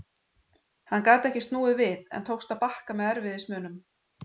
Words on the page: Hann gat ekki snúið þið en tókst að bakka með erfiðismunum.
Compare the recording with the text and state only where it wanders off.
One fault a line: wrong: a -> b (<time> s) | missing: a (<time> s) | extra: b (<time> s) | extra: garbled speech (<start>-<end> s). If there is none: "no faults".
wrong: þið -> við (1.8 s)